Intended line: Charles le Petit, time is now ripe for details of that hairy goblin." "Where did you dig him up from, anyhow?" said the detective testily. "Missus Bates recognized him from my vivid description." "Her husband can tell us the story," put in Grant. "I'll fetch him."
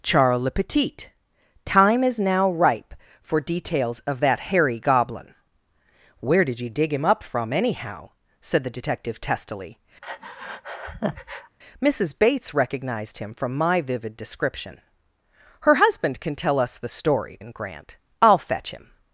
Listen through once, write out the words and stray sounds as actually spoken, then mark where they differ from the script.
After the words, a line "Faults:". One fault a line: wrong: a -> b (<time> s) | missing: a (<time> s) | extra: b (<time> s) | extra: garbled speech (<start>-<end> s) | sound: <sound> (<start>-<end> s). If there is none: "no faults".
Charles le Petit, time is now ripe for details of that hairy goblin." "Where did you dig him up from, anyhow?" said the detective testily. "Missus Bates recognized him from my vivid description." "Her husband can tell us the story," in Grant. "I'll fetch him."
Faults:
sound: breath (10.0-11.6 s)
missing: put (17.4 s)